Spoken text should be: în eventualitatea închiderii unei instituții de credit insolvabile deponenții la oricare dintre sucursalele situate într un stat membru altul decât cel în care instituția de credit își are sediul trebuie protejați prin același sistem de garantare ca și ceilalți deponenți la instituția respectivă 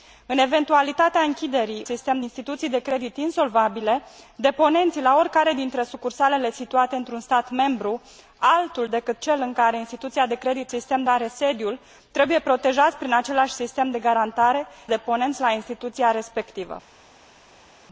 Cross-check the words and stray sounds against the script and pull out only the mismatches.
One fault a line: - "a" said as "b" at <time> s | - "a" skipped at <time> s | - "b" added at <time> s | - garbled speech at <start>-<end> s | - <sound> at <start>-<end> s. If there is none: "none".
- "unei" said as "sistem" at 1.8 s
- "își" said as "sistem" at 10.7 s
- "ca și ceilalți" skipped at 14.7 s